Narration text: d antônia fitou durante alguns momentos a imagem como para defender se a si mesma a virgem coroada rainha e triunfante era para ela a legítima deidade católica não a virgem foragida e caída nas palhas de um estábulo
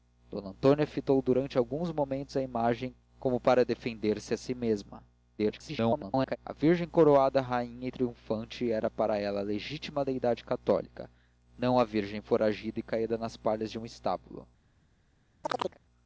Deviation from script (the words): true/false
true